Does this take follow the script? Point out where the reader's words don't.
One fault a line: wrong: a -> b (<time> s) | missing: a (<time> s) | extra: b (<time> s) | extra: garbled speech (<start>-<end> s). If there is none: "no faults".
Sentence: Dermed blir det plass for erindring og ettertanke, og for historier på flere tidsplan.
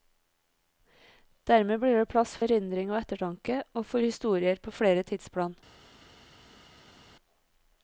missing: for (2.3 s)